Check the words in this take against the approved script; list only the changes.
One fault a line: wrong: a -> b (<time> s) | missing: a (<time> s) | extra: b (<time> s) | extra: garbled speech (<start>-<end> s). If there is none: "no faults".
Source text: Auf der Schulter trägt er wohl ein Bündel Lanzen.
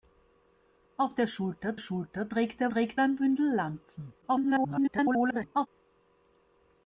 extra: Schulter (1.8 s)
wrong: wohl -> trägt (2.7 s)
extra: garbled speech (4.2-5.7 s)